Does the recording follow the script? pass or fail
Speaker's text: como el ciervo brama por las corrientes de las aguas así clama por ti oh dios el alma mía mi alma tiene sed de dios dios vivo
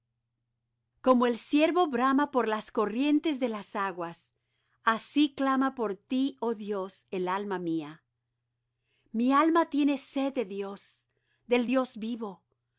fail